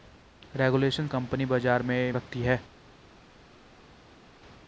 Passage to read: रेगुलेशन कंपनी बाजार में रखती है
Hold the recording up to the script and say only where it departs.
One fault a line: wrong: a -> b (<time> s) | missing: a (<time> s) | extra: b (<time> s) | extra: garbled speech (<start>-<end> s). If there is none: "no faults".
no faults